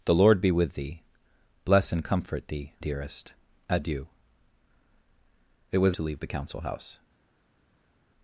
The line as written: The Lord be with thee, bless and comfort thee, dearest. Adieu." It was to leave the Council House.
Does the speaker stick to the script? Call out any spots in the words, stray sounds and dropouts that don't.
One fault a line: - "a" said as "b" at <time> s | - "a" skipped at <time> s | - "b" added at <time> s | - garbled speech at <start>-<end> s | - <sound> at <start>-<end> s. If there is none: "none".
none